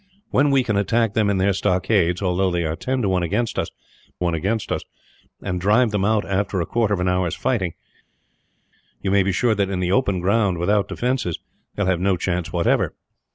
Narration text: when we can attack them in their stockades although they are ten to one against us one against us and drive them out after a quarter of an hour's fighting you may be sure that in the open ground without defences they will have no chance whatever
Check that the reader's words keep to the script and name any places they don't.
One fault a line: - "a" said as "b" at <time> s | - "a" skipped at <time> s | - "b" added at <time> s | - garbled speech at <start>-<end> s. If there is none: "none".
none